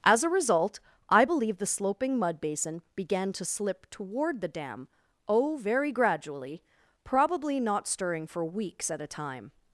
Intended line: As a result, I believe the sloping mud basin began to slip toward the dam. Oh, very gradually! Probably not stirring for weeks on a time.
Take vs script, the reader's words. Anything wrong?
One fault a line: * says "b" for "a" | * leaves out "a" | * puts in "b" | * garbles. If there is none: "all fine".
* says "at" for "on"